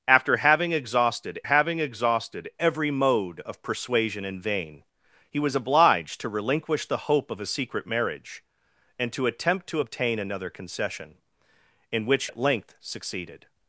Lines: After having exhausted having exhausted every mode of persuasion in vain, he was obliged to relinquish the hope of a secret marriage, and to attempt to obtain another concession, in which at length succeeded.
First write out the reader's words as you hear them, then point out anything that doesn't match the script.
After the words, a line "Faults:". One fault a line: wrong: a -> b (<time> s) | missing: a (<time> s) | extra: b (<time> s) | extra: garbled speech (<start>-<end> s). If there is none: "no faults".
After having exhausted having exhausted every mode of persuasion in vain, he was obliged to relinquish the hope of a secret marriage, and to attempt to obtain another concession, in which at length succeeded.
Faults:
no faults